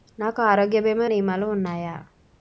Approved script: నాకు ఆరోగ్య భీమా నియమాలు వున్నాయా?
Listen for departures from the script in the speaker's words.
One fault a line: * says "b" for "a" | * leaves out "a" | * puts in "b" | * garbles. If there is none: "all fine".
all fine